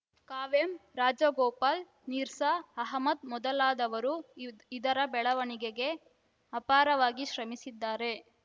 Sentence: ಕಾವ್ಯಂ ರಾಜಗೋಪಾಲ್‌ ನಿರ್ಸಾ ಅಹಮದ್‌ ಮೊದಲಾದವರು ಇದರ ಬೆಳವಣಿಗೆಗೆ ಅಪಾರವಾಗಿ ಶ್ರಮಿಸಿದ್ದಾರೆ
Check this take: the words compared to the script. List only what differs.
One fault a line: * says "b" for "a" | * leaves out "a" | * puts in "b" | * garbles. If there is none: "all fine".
all fine